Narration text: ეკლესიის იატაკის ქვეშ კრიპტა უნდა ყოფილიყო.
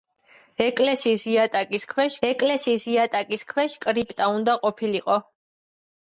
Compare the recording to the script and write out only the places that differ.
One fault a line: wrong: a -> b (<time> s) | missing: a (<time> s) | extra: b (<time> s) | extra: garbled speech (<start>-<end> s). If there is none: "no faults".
extra: ეკლესიის იატაკის ქვეშ (2.3 s)